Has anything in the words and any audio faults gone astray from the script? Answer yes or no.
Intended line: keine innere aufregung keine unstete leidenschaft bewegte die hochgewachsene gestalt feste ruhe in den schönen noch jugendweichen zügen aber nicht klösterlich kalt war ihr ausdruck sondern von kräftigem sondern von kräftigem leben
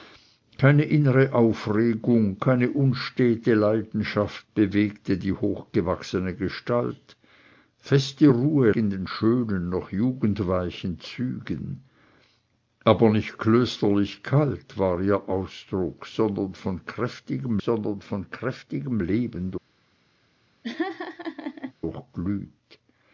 yes